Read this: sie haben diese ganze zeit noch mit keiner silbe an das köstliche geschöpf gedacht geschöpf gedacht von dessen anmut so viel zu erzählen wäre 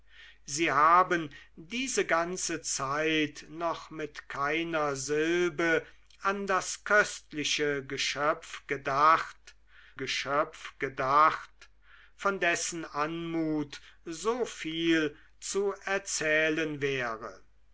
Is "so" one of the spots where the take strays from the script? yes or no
no